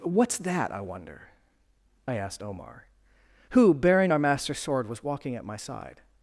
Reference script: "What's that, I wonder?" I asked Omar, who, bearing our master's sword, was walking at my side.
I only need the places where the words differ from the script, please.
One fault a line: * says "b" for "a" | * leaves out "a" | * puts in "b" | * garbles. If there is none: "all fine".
all fine